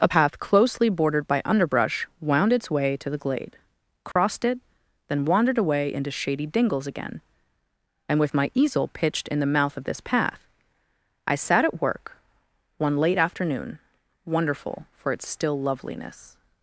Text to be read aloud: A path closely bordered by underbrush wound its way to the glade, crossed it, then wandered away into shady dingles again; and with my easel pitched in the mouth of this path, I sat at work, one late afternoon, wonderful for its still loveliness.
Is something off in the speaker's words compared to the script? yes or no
no